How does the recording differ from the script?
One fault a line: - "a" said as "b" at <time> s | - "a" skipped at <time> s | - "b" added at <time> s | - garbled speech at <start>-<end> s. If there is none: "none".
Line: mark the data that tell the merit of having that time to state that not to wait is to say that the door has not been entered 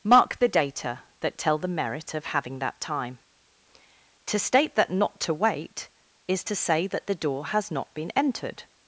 none